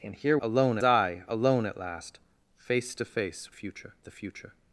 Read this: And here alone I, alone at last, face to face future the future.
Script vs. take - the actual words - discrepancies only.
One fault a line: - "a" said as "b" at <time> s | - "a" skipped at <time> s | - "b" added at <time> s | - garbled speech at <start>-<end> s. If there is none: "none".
none